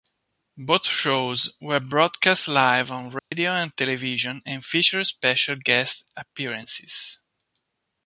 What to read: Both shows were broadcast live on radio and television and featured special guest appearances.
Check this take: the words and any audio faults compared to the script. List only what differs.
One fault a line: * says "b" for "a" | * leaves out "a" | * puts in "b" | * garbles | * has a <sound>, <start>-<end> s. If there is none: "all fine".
* has a dropout, 3.2-3.3 s